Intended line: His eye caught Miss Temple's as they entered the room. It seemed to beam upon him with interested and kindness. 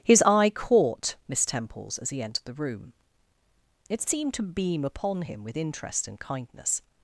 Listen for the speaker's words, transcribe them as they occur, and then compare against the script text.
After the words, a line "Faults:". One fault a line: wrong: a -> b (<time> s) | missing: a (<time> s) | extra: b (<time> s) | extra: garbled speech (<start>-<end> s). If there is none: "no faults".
His eye caught Miss Temple's as he entered the room. It seemed to beam upon him with interest and kindness.
Faults:
wrong: they -> he (2.1 s)
wrong: interested -> interest (5.6 s)